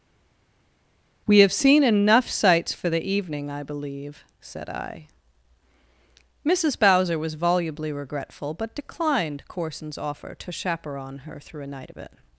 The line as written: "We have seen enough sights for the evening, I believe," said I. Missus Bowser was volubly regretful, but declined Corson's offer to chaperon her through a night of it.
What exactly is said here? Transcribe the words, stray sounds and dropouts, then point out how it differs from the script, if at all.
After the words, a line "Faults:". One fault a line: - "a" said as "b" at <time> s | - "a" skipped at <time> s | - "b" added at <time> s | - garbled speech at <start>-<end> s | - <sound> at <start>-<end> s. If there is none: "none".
"We have seen enough sights for the evening, I believe," said I. Missus Bowser was volubly regretful, but declined Corson's offer to chaperon her through a night of it.
Faults:
none